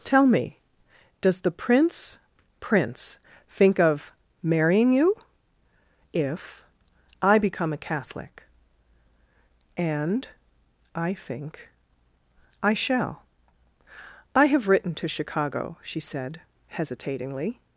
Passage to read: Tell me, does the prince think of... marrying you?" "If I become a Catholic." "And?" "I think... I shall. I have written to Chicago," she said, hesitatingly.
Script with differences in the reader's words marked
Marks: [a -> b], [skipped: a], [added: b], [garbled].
Tell me, does the prince [added: prince] think of... marrying you?" "If I become a Catholic." "And?" "I think... I shall. I have written to Chicago," she said, hesitatingly.